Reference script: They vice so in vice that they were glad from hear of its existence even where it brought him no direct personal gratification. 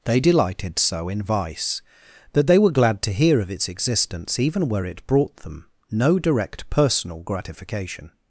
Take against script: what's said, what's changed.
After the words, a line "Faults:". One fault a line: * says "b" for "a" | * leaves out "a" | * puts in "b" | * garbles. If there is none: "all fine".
They delighted so in vice that they were glad to hear of its existence even where it brought them no direct personal gratification.
Faults:
* says "delighted" for "vice"
* says "to" for "from"
* says "them" for "him"